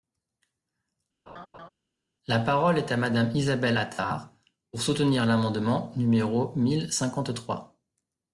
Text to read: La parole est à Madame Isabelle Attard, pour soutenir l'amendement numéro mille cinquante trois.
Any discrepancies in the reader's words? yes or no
no